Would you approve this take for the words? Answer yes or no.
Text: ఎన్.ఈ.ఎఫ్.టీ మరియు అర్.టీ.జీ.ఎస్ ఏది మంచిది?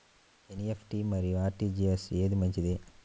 yes